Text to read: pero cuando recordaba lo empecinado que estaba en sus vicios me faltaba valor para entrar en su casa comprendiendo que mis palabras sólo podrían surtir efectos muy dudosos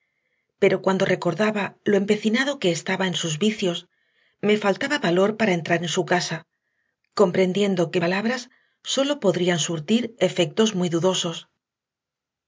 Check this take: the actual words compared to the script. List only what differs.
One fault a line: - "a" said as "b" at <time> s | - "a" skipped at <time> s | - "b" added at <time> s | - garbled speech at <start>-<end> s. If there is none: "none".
- "mis" skipped at 8.0 s